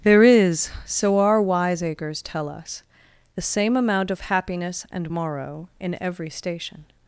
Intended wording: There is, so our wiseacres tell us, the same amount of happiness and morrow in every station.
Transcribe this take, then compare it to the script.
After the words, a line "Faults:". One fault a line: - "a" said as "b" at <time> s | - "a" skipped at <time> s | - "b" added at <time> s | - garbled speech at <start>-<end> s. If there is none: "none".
There is, so our wiseacres tell us, the same amount of happiness and morrow in every station.
Faults:
none